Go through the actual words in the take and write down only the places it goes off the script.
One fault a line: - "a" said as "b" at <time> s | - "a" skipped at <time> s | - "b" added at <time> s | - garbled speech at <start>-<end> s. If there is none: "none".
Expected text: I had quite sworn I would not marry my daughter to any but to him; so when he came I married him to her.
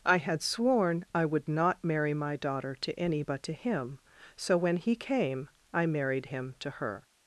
- "quite" skipped at 0.4 s